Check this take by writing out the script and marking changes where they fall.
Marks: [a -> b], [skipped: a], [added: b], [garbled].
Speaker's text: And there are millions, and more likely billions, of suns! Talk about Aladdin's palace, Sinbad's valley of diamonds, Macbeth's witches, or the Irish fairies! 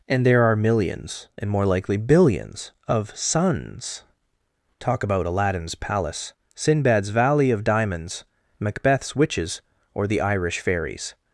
And there are millions, and more likely billions, of suns! Talk about Aladdin's palace, Sinbad's valley of diamonds, Macbeth's witches, or the Irish fairies!